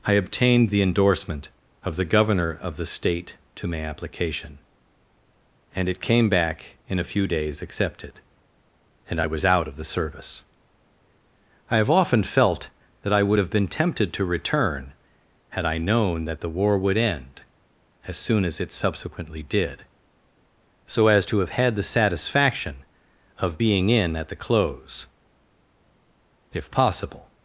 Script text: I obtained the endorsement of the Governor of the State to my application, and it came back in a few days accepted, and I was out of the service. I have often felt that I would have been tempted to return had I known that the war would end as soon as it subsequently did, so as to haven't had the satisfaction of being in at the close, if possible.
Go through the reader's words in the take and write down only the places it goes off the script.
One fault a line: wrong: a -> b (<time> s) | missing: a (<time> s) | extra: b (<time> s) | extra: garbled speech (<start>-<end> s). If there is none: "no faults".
wrong: haven't -> have (21.4 s)